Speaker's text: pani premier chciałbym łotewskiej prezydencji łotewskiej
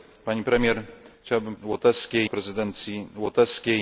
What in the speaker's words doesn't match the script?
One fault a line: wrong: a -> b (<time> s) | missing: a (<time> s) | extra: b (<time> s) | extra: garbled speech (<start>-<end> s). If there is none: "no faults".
no faults